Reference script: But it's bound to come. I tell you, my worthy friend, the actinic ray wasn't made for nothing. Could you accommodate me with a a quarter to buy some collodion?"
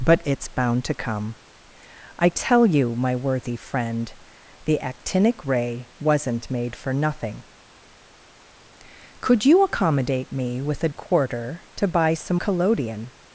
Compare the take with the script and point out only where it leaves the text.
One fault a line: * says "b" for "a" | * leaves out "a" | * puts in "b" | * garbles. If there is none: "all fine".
all fine